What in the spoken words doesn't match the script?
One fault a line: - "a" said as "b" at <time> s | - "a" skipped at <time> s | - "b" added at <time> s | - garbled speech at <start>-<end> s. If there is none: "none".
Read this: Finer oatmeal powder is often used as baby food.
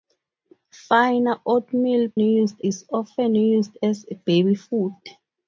- "powder" said as "used" at 2.2 s